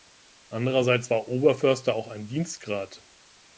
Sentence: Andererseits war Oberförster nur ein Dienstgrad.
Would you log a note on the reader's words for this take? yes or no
yes